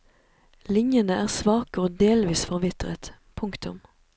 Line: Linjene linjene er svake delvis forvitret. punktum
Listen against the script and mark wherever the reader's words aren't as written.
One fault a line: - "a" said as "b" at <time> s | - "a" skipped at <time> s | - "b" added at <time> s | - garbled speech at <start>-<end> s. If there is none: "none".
- "linjene" skipped at 1.2 s
- "og" added at 1.9 s